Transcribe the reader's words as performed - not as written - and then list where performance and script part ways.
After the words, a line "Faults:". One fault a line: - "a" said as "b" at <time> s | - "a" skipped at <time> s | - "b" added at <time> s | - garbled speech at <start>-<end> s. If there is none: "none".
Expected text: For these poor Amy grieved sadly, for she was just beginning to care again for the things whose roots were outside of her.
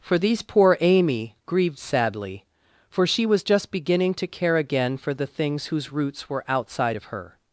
For these poor Amy grieved sadly, for she was just beginning to care again for the things whose roots were outside of her.
Faults:
none